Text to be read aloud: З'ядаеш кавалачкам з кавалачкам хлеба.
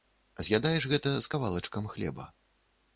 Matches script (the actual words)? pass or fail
fail